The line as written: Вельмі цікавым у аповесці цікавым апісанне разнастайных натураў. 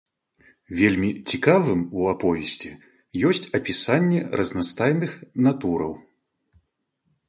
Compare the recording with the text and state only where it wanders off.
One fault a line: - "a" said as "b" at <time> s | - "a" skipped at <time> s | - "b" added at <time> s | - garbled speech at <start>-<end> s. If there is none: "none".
- "цікавым" said as "ёсць" at 3.3 s